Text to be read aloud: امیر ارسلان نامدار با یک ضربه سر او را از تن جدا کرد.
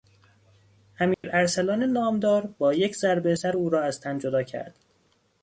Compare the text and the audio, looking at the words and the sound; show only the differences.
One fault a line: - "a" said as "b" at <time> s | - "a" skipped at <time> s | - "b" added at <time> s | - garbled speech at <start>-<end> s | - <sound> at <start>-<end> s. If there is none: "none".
- dropout at 1.1-1.2 s